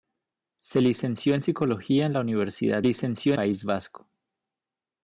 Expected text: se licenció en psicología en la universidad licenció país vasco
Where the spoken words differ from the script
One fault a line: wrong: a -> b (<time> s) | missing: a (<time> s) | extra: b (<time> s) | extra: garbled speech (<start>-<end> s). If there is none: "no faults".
no faults